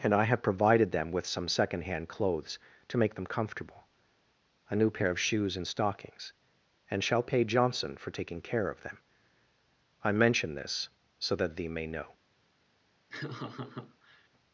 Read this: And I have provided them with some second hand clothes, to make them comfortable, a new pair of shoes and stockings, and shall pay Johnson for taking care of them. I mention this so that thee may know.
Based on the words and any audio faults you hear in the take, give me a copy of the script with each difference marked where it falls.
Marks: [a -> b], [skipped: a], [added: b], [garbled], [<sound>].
And I have provided them with some second hand clothes, to make them comfortable, a new pair of shoes and stockings, and shall pay Johnson for taking care of them. I mention this so that thee may know. [laugh]